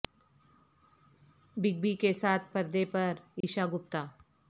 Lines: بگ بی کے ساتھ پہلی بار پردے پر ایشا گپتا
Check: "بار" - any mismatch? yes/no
yes